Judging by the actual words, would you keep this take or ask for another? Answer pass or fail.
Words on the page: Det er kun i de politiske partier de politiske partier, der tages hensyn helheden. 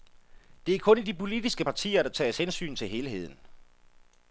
fail